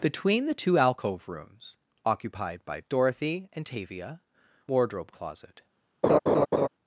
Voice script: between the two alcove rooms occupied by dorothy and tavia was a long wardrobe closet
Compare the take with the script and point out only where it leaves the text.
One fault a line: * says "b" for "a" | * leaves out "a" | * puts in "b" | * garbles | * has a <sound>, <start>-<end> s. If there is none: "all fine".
* leaves out "was a long"
* has a laugh, 6.0-6.7 s